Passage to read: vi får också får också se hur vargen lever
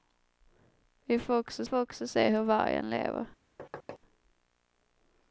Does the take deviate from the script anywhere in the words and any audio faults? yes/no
yes